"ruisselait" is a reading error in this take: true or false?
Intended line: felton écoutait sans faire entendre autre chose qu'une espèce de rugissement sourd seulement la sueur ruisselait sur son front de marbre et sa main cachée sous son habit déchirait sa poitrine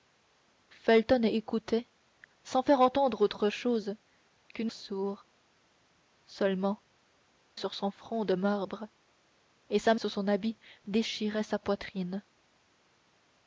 true